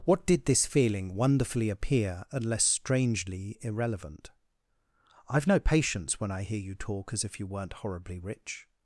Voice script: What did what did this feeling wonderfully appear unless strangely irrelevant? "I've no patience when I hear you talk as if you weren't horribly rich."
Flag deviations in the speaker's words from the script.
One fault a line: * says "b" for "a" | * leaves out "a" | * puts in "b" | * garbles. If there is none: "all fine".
* leaves out "what did"